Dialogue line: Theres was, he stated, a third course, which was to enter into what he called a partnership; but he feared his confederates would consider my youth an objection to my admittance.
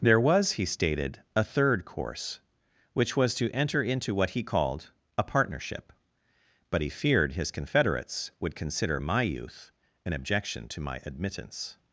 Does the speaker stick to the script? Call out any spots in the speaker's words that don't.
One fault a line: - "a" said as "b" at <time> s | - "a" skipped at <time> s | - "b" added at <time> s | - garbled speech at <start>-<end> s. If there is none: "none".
- "Theres" said as "There" at 0.0 s